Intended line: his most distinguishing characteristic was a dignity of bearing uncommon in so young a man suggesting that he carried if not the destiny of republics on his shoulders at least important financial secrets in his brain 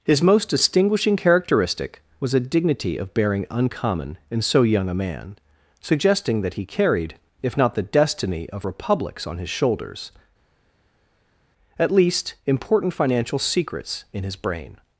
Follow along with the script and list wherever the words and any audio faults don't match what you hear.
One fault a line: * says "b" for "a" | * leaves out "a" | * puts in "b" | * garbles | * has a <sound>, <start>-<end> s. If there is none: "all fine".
all fine